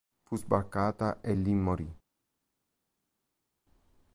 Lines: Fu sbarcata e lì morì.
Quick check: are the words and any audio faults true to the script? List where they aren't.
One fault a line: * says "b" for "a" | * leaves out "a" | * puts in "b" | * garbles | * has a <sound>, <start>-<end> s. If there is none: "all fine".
all fine